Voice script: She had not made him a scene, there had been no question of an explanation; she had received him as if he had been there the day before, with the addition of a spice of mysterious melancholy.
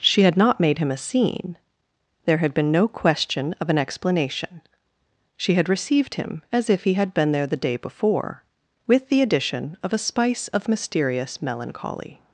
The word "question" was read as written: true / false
true